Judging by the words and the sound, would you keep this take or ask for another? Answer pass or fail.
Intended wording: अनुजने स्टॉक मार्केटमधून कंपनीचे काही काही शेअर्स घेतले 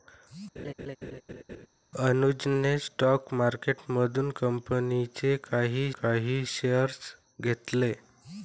fail